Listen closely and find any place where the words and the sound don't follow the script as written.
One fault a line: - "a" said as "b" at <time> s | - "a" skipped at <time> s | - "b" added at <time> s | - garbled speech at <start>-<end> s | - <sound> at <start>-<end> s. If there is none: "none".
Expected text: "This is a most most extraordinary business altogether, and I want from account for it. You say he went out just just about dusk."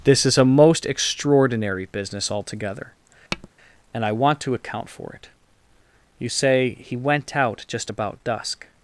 - "most" skipped at 0.9 s
- tap at 3.3-3.5 s
- "from" said as "to" at 4.4 s
- "just" skipped at 7.9 s